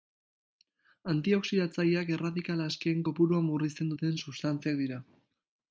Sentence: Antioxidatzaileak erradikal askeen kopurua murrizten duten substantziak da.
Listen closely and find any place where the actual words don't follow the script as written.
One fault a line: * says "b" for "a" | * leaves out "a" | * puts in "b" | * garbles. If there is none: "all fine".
* says "dira" for "da"